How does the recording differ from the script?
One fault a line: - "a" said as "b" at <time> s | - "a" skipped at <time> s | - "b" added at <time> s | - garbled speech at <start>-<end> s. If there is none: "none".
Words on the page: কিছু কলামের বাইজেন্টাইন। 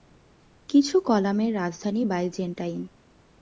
- "রাজধানী" added at 1.5 s